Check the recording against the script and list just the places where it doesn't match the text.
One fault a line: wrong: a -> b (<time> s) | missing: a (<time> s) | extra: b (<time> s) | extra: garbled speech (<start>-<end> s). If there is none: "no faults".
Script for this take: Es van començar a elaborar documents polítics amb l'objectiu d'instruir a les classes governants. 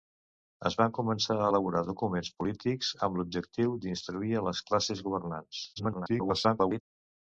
extra: garbled speech (5.8-6.8 s)